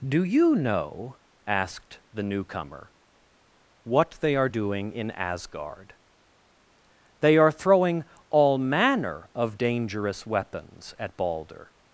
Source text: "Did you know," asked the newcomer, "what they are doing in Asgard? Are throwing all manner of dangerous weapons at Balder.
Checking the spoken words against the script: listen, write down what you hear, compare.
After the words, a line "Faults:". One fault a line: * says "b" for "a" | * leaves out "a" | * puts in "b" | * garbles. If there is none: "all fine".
"Do you know," asked the newcomer, "what they are doing in Asgard? They are throwing all manner of dangerous weapons at Balder.
Faults:
* says "Do" for "Did"
* puts in "They"